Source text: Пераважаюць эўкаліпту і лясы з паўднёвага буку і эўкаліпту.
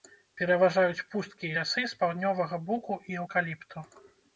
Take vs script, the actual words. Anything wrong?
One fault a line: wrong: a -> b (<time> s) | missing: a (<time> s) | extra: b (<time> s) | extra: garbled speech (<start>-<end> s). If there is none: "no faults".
wrong: эўкаліпту -> пусткі (1.1 s)